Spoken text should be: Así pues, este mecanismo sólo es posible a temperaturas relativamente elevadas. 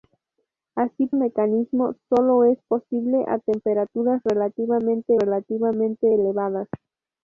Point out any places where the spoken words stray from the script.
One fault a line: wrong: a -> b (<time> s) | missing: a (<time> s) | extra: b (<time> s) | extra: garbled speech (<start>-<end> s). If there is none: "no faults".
missing: pues este (1.1 s)
extra: relativamente (5.2 s)